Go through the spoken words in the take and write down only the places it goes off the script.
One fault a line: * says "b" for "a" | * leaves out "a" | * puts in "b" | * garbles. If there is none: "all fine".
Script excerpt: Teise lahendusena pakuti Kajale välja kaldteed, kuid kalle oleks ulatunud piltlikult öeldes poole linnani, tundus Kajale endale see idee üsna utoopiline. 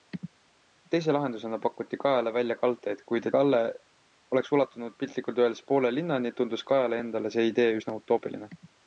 all fine